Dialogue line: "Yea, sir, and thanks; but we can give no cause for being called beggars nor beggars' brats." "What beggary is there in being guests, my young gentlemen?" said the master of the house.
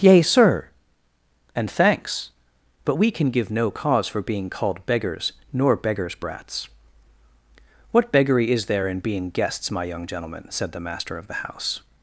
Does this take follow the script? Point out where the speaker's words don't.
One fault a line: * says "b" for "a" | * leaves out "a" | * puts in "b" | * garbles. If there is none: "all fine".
all fine